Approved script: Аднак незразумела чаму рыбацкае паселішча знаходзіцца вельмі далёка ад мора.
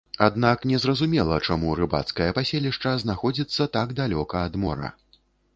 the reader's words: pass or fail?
fail